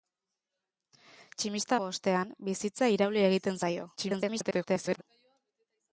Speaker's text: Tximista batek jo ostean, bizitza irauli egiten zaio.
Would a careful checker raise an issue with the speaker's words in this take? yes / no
yes